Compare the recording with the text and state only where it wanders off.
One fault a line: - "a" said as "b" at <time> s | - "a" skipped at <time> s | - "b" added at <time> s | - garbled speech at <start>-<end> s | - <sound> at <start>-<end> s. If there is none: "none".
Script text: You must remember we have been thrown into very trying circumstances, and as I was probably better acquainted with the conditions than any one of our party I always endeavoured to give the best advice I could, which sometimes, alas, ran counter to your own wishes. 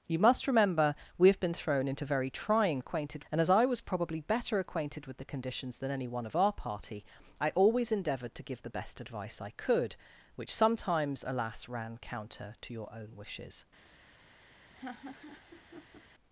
- "circumstances" said as "acquainted" at 2.8 s
- laugh at 14.7-16.0 s